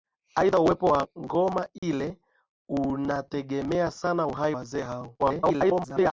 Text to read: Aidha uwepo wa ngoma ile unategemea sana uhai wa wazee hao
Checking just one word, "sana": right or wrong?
right